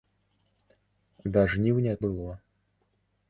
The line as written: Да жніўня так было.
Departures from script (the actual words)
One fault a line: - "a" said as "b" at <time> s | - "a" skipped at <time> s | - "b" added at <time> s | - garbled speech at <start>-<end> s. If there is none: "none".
- "так" skipped at 1.9 s